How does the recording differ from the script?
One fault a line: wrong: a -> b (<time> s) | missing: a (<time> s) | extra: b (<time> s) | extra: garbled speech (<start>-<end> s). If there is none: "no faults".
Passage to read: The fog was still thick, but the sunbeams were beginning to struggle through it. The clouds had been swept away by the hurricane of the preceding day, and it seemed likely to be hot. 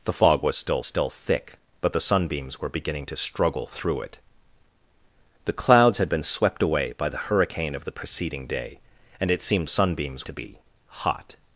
extra: still (0.9 s)
wrong: likely -> sunbeams (9.7 s)